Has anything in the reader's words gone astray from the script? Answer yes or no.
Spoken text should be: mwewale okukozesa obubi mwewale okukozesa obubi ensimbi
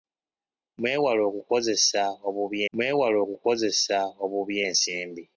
no